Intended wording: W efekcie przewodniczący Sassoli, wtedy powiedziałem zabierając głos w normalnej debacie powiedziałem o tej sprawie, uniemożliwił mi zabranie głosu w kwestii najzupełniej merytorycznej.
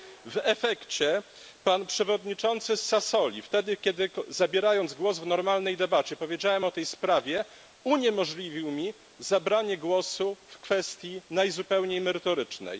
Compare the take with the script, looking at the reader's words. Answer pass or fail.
fail